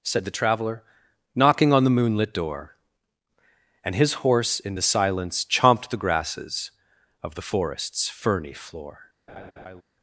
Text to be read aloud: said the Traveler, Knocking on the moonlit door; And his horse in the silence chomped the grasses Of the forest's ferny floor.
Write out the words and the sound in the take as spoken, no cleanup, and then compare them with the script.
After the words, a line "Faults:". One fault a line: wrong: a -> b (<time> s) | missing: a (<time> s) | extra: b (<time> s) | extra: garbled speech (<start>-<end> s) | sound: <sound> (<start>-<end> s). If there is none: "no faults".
said the Traveler, Knocking on the moonlit door; And his horse in the silence chomped the grasses Of the forest's ferny floor.
Faults:
sound: laugh (9.3-9.8 s)